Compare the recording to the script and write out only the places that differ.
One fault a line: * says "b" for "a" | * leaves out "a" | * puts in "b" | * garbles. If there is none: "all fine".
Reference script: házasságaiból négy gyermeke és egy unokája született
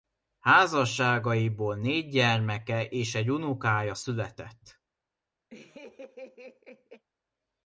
all fine